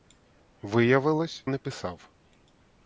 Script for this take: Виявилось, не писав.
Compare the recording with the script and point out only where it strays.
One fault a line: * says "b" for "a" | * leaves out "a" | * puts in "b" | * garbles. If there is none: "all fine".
all fine